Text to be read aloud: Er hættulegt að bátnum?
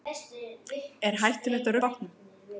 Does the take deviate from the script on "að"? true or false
false